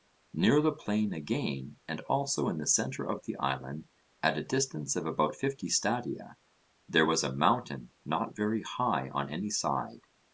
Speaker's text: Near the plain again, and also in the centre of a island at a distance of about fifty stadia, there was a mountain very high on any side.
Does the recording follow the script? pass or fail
fail